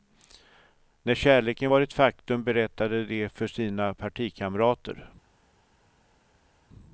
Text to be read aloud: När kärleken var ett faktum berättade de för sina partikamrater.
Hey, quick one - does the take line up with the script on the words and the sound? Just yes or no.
yes